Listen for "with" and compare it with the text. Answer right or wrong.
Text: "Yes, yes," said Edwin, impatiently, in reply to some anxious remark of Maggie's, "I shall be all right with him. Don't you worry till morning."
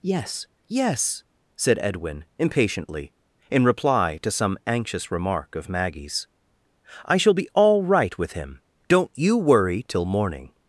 right